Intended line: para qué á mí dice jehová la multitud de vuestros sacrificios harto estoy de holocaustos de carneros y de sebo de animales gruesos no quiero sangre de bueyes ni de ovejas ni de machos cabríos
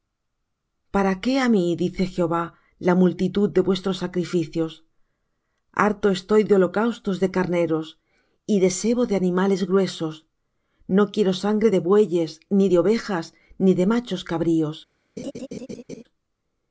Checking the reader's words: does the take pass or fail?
pass